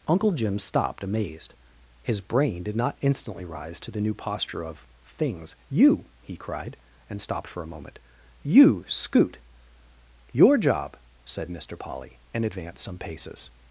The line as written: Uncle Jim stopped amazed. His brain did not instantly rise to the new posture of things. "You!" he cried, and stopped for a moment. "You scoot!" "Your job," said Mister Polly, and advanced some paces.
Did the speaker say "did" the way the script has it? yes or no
yes